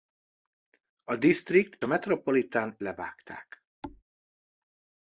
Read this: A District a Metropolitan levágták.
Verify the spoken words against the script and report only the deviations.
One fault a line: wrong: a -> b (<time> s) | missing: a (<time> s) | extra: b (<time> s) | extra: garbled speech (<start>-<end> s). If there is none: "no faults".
no faults